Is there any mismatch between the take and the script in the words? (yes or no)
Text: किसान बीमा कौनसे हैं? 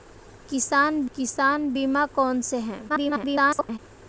yes